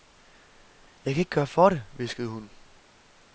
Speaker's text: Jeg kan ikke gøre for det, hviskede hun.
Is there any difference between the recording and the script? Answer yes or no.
no